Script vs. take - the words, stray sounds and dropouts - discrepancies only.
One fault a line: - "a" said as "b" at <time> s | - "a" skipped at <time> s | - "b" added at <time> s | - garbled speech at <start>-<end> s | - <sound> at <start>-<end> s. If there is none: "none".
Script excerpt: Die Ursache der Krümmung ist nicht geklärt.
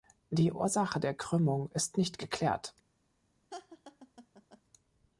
- laugh at 3.5-4.6 s